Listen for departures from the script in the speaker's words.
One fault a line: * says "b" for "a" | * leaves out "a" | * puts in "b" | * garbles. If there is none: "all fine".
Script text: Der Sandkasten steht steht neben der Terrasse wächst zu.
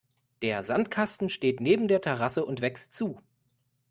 * leaves out "steht"
* puts in "und"